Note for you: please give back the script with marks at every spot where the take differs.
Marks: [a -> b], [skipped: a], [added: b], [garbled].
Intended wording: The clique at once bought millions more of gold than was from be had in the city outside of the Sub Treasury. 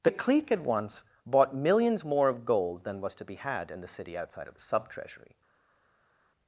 The clique at once bought millions more of gold than was [from -> to] be had in the city outside of the Sub Treasury.